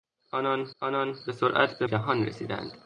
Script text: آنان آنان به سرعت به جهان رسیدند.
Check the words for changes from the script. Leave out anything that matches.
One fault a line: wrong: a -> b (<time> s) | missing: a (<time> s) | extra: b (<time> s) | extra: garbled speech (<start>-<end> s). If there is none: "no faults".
no faults